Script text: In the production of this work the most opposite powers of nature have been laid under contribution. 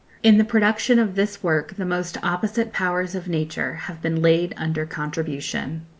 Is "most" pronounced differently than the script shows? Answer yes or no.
no